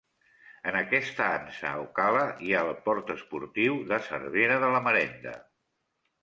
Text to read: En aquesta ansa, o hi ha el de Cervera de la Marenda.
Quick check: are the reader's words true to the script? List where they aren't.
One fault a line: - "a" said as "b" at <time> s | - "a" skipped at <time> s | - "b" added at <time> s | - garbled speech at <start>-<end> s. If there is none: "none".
- "cala" added at 2.0 s
- "port esportiu" added at 2.9 s